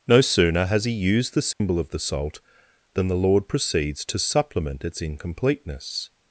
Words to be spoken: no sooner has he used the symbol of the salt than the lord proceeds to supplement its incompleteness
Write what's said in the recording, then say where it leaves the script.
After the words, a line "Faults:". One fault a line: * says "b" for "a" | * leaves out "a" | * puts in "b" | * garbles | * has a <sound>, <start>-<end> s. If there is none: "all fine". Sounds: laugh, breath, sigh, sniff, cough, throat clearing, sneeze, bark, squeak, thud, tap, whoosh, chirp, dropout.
no sooner has he used the symbol of the salt than the lord proceeds to supplement its incompleteness
Faults:
* has a dropout, 1.5-1.6 s